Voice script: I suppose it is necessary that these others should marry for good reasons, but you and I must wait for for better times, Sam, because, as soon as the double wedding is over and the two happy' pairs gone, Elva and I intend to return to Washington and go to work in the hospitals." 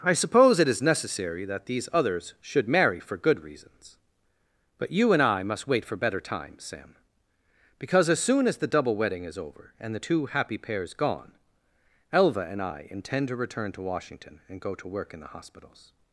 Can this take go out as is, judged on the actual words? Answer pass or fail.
fail